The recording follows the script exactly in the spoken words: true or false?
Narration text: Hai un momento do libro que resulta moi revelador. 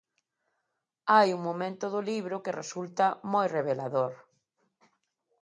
true